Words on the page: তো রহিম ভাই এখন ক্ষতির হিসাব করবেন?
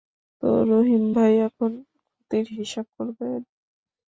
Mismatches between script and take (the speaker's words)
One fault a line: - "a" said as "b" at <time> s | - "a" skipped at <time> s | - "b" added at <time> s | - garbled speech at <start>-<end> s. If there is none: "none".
none